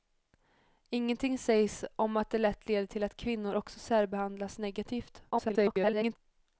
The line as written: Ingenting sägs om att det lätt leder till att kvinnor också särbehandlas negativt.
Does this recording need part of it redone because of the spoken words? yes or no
yes